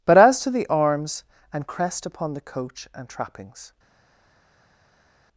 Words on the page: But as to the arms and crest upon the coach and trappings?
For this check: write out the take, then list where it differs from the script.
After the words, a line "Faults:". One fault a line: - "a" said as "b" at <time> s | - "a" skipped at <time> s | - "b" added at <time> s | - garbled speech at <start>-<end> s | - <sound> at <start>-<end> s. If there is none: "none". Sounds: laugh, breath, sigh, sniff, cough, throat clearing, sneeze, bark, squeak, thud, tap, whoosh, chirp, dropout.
But as to the arms and crest upon the coach and trappings?
Faults:
none